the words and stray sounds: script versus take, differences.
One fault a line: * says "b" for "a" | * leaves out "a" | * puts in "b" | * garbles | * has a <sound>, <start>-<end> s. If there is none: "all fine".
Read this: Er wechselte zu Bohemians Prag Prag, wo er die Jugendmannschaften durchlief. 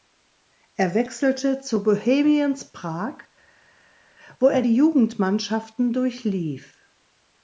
* leaves out "Prag"